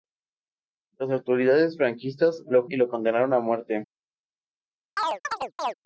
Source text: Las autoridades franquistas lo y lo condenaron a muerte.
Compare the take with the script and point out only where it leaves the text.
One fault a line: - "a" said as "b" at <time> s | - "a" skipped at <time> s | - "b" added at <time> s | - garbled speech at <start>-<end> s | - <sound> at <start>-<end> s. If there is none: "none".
- chirp at 5.0-5.7 s